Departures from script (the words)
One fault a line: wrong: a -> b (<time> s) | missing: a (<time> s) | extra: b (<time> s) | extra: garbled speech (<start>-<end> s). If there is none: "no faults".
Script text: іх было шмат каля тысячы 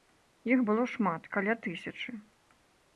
no faults